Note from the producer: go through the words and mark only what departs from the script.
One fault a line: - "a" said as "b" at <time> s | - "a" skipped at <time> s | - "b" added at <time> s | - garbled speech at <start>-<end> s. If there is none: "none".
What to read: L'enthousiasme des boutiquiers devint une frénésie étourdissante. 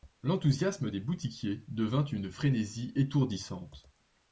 none